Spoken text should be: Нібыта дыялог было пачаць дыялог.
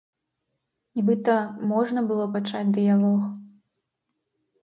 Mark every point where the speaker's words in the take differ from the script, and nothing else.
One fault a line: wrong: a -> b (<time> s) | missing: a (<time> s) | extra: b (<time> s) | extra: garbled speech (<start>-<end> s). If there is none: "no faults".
wrong: дыялог -> можна (1.7 s)